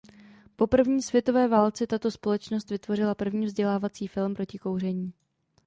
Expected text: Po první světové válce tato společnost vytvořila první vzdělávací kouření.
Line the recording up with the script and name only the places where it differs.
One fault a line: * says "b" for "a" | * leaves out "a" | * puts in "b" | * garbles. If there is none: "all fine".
* puts in "film proti"